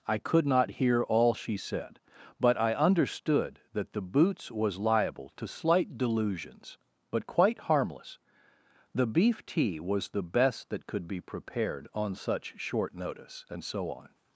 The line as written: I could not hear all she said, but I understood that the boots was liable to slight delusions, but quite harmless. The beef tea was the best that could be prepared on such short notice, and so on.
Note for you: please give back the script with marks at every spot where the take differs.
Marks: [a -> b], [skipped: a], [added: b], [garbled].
I could not hear all she said, but I understood that the boots was liable to slight delusions, but quite harmless. The beef tea was the best that could be prepared on such short notice, and so on.